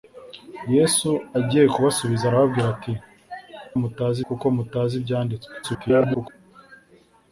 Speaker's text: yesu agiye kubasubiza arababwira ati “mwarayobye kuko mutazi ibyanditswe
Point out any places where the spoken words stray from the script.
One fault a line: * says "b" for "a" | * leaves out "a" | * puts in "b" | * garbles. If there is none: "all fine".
* says "mutazi" for "mwarayobye"
* garbles